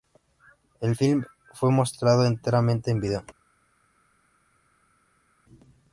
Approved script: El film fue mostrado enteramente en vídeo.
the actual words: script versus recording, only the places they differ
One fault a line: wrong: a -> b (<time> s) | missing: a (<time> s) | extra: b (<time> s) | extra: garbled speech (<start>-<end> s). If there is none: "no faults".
no faults